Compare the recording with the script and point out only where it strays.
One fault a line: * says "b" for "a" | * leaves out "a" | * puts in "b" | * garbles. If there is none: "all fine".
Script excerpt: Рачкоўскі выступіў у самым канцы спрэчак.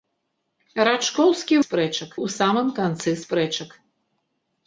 * says "спрэчак" for "выступіў"